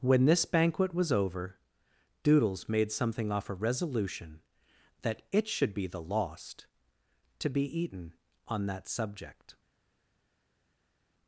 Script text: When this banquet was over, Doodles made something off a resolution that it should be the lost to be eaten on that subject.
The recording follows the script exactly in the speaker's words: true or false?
true